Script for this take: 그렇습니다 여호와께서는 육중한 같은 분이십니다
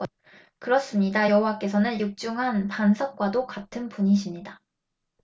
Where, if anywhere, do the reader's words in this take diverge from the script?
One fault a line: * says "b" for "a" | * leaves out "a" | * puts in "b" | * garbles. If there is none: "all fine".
* puts in "반석과도"